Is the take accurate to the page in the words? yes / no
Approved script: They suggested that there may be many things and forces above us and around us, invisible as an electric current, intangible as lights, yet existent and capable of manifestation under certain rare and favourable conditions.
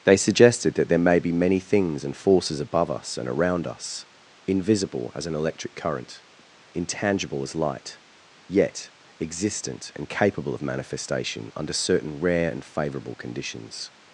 no